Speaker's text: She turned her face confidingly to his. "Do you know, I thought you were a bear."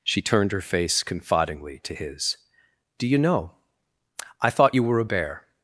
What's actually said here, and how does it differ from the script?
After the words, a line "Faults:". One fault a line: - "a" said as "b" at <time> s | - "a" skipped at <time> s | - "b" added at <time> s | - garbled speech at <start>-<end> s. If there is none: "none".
She turned her face confidingly to his. "Do you know, I thought you were a bear."
Faults:
none